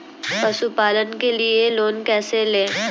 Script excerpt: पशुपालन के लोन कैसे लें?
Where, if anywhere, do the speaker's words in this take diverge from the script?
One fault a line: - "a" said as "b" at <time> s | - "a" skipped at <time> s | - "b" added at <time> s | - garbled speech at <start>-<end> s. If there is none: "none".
- "लिए" added at 1.4 s